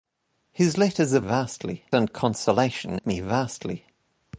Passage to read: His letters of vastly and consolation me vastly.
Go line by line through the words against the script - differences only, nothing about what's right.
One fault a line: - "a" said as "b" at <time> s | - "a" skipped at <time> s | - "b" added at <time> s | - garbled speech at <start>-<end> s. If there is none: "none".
none